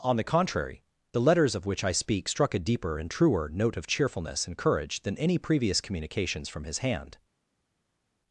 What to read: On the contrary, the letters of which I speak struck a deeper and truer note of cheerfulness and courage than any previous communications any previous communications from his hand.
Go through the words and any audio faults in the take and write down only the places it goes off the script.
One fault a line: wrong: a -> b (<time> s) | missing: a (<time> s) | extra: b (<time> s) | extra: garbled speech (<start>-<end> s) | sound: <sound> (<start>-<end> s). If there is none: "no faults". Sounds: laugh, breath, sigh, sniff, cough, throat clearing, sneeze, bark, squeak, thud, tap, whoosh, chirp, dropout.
missing: any previous communications (6.5 s)